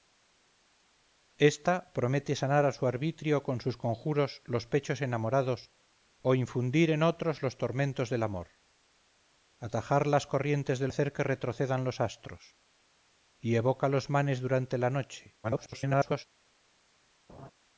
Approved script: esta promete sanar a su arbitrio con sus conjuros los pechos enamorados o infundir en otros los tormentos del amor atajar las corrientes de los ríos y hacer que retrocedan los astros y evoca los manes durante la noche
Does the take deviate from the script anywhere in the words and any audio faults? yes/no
yes